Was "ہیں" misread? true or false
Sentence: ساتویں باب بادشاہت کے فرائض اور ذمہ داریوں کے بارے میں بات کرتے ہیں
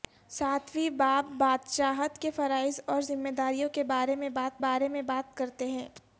false